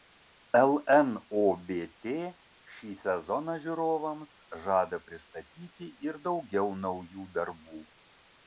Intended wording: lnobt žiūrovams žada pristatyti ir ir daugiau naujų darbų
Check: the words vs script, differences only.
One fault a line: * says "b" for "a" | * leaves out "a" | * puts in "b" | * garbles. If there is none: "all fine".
* puts in "šį sezoną"
* leaves out "ir"